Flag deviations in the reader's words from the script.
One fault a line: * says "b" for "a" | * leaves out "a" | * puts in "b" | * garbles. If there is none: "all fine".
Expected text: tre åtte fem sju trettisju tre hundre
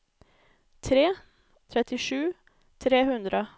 * leaves out "åtte fem sju"